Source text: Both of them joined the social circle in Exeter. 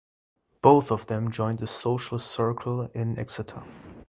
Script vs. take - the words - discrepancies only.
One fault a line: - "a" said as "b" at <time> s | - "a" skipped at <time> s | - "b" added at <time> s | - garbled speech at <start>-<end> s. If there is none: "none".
none